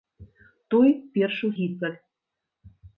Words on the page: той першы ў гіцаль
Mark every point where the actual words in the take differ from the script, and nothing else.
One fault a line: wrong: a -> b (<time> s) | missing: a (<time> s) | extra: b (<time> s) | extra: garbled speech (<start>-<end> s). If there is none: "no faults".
no faults